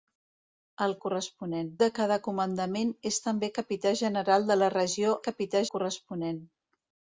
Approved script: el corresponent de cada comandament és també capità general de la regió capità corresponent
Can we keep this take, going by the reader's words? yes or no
yes